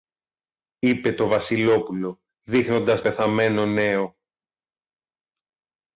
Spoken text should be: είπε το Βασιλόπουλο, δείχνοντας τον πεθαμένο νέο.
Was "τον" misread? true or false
true